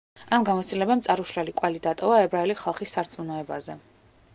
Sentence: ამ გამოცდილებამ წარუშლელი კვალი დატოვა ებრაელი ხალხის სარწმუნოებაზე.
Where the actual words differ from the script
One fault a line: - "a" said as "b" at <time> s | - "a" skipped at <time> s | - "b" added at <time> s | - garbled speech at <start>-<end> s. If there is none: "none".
none